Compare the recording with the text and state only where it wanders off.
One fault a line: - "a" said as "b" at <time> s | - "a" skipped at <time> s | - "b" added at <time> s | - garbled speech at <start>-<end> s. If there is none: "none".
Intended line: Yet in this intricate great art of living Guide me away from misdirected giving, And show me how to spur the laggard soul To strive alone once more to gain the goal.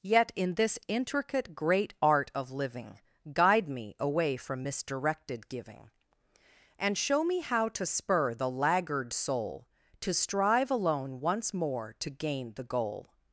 none